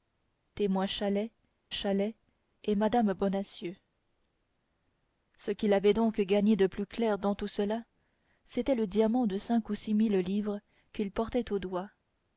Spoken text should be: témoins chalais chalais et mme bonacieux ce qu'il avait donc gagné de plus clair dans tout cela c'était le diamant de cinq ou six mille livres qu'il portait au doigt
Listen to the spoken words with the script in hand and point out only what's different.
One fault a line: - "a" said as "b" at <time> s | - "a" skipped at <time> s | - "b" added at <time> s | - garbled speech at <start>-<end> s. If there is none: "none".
none